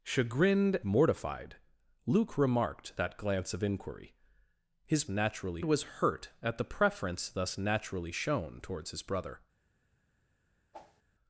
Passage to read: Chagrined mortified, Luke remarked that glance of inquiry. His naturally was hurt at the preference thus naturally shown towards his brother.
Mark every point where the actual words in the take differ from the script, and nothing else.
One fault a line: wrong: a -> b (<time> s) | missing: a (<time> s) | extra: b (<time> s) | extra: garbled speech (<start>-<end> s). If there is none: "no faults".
no faults